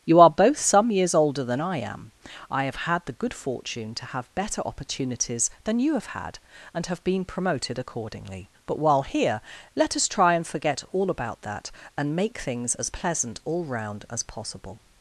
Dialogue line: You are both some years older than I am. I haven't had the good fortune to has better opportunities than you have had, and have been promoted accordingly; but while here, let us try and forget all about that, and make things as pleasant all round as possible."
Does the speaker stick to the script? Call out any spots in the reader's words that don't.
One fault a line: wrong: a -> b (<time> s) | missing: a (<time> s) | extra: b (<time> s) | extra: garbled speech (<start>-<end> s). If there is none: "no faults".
wrong: haven't -> have (2.6 s)
wrong: has -> have (4.0 s)